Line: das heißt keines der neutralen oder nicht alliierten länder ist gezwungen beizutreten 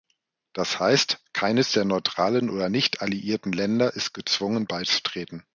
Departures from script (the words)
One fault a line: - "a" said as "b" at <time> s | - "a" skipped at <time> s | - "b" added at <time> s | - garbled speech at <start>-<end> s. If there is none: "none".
none